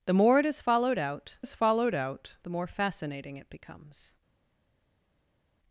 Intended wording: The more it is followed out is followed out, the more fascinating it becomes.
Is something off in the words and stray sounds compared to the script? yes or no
no